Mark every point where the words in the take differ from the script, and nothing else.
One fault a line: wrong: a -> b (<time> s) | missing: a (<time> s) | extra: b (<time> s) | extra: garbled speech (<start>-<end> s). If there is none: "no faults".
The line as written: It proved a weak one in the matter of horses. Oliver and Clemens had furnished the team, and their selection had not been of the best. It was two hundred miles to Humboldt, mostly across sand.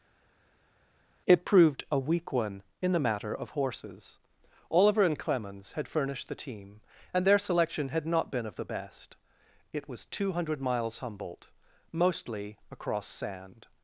missing: to (11.0 s)